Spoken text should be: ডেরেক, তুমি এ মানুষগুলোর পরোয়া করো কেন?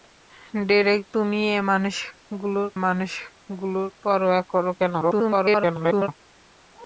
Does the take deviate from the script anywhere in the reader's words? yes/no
yes